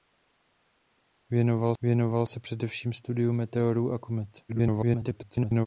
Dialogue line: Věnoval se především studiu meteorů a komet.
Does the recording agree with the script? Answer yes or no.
no